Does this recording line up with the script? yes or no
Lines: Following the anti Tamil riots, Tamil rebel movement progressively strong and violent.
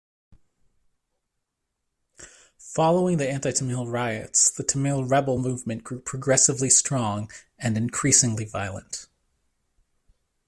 no